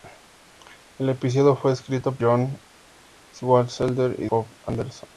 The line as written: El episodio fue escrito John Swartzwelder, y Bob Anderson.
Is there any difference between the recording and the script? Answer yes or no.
no